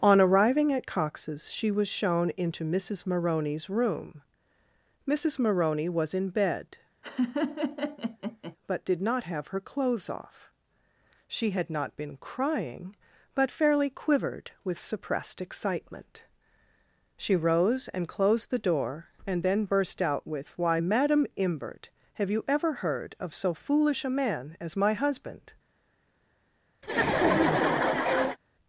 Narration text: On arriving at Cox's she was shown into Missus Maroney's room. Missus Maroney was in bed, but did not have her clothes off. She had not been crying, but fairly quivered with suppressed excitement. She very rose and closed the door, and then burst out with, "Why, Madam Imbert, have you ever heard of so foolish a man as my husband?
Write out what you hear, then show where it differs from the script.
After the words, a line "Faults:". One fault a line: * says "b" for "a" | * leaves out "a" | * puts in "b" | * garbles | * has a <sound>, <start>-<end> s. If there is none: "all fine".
On arriving at Cox's she was shown into Missus Maroney's room. Missus Maroney was in bed, but did not have her clothes off. She had not been crying, but fairly quivered with suppressed excitement. She rose and closed the door, and then burst out with, "Why, Madam Imbert, have you ever heard of so foolish a man as my husband?
Faults:
* has a laugh, 7.0-8.6 s
* leaves out "very"
* has a laugh, 26.8-28.4 s